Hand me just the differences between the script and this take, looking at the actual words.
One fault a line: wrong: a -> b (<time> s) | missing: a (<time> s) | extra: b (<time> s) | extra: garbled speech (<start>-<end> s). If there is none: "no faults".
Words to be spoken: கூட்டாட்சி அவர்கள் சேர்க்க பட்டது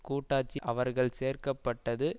no faults